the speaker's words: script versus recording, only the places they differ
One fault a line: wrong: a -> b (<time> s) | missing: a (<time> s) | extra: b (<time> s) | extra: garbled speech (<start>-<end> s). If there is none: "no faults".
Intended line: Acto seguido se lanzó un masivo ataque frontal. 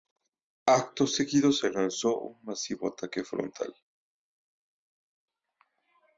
no faults